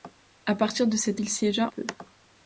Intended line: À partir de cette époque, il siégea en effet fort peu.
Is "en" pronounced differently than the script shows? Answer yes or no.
yes